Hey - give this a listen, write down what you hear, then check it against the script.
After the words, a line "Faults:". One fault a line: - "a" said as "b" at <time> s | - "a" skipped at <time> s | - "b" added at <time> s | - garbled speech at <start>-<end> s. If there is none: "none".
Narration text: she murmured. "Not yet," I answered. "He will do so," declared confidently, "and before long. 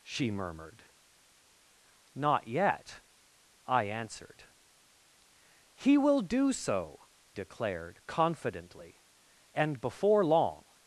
she murmured. "Not yet," I answered. "He will do so," declared confidently, "and before long.
Faults:
none